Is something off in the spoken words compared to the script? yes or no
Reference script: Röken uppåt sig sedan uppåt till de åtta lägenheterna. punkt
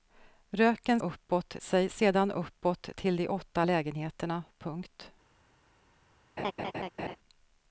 no